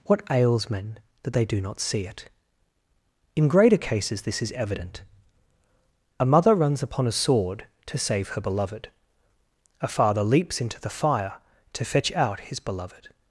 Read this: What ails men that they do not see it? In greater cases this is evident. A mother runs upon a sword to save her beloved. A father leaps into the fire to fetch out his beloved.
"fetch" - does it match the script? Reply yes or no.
yes